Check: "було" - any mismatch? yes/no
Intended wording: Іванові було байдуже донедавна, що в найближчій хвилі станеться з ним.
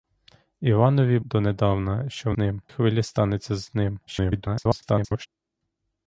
yes